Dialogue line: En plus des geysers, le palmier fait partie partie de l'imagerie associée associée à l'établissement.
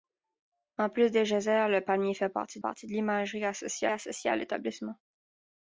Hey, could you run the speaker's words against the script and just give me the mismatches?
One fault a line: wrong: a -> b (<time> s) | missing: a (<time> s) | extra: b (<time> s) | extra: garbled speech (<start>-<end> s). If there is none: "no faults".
no faults